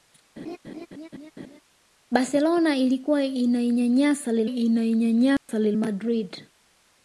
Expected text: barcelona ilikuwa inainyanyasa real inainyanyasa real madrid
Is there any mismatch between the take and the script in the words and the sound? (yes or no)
yes